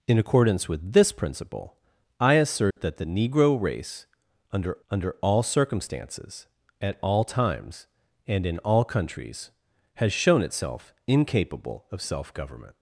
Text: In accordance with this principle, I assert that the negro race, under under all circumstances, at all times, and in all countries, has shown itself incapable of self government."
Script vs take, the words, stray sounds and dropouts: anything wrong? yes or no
yes